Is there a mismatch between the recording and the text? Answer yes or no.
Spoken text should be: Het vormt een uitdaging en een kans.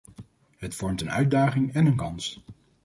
no